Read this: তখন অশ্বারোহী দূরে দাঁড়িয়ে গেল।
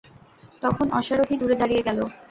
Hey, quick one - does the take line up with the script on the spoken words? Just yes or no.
yes